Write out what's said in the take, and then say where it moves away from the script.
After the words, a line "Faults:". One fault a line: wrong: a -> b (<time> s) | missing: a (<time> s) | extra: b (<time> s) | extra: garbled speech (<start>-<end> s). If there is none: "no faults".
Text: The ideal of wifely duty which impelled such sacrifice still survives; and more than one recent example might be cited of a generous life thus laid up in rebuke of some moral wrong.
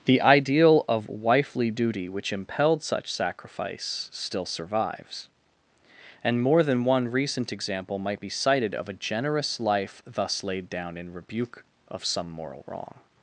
The ideal of wifely duty which impelled such sacrifice still survives; and more than one recent example might be cited of a generous life thus laid down in rebuke of some moral wrong.
Faults:
wrong: up -> down (10.7 s)